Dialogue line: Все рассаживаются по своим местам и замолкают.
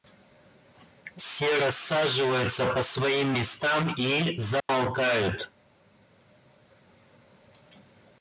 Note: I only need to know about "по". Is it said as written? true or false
true